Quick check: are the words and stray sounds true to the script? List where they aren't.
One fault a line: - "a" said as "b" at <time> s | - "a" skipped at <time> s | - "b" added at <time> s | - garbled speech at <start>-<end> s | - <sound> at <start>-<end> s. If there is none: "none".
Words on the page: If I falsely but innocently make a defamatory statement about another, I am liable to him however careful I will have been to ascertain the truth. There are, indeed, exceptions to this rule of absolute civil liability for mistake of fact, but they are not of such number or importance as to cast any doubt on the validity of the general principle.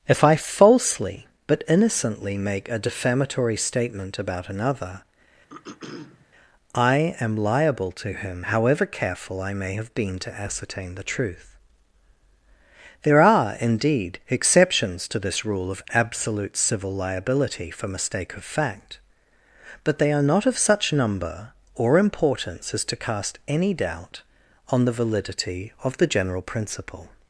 - throat clearing at 5.5-6.3 s
- "will" said as "may" at 9.5 s